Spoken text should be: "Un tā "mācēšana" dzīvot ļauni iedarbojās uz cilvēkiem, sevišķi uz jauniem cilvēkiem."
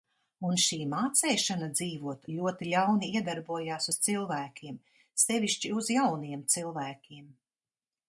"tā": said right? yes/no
no